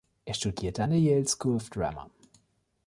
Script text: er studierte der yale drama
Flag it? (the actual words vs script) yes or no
yes